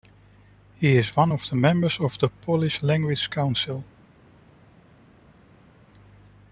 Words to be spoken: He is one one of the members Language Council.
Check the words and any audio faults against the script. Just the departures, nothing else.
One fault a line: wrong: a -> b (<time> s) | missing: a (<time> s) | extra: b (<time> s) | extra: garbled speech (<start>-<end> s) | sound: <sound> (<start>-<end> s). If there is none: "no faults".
wrong: one -> of the members (1.3 s)
wrong: members -> Polish (2.3 s)